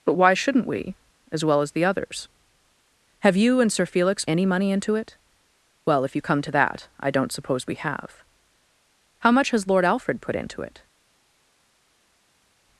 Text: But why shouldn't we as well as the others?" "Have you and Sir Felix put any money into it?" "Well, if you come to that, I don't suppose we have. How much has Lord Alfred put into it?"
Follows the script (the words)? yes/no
no